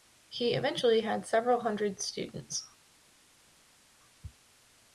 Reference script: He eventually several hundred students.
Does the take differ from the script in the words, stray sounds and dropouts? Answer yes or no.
yes